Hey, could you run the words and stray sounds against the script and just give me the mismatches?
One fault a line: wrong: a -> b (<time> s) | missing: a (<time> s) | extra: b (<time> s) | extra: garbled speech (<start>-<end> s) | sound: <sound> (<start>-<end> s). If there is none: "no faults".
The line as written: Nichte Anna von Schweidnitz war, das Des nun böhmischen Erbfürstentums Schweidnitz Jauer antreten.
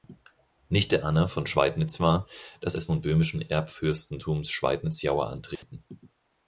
sound: dropout (5.6-5.6 s)